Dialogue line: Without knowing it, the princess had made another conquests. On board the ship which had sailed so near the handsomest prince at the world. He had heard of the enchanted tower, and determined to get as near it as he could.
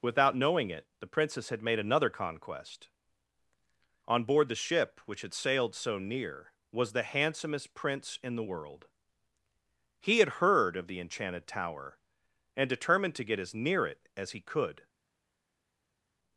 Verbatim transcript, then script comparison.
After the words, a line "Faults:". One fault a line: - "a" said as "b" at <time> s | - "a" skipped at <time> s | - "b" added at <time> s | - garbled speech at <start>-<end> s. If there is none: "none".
Without knowing it, the princess had made another conquest. On board the ship which had sailed so near was the handsomest prince in the world. He had heard of the enchanted tower, and determined to get as near it as he could.
Faults:
- "conquests" said as "conquest" at 2.1 s
- "was" added at 6.7 s
- "at" said as "in" at 8.2 s